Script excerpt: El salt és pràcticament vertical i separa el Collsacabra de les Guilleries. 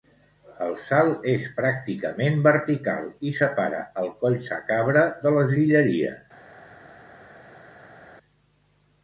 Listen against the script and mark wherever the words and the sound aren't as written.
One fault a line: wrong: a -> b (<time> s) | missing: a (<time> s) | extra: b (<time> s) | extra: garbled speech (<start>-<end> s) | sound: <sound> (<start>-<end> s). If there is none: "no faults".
no faults